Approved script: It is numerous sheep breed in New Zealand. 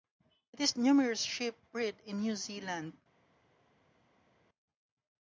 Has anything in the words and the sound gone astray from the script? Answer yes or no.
no